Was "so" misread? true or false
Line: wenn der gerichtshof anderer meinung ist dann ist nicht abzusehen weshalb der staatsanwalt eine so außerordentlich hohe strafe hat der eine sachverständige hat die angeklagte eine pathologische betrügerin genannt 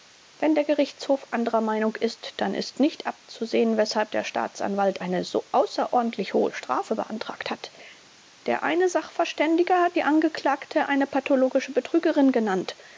false